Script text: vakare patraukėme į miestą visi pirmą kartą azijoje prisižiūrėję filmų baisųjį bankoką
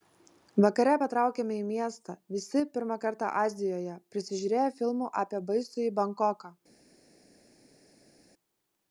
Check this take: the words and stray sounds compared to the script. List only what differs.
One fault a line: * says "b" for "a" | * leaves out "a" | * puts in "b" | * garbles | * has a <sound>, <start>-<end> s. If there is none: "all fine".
* puts in "apie"